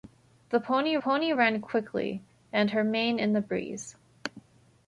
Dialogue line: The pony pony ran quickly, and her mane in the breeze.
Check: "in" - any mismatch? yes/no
no